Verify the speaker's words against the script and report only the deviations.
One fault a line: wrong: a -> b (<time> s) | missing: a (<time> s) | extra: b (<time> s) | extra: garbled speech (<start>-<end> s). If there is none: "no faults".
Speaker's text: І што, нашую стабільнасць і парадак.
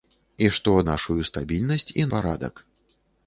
no faults